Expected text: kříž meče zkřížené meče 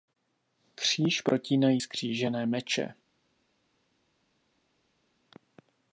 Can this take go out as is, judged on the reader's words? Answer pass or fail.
fail